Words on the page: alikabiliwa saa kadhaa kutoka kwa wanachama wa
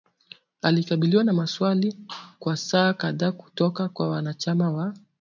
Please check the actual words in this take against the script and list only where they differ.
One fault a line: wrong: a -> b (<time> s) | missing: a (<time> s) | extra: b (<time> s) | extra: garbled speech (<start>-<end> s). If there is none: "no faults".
extra: na maswali kwa (1.2 s)